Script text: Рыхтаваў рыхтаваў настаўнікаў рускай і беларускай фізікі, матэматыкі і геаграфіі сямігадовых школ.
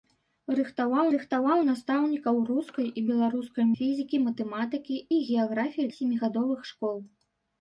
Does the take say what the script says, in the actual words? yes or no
yes